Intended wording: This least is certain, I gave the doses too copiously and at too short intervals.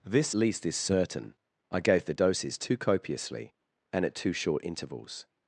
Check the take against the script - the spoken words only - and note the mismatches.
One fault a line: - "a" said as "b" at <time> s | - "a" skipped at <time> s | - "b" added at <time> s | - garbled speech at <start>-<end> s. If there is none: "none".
none